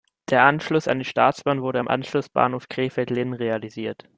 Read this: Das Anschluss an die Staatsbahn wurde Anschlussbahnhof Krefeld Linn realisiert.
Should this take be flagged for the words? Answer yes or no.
yes